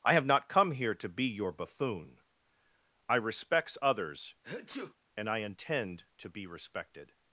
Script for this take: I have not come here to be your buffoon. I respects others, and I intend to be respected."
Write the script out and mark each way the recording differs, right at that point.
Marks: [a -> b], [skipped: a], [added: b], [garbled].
I have not come here to be your buffoon. I respects others, and I intend to be respected."